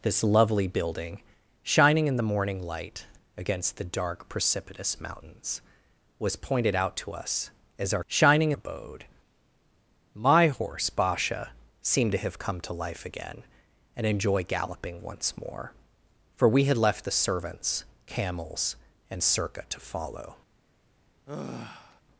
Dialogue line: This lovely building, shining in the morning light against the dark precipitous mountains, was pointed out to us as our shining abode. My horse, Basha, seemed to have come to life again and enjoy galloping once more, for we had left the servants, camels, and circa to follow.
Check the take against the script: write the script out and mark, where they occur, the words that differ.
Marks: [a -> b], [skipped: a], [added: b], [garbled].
This lovely building, shining in the morning light against the dark precipitous mountains, was pointed out to us as our shining abode. My horse, Basha, seemed to have come to life again and enjoy galloping once more, for we had left the servants, camels, and circa to follow.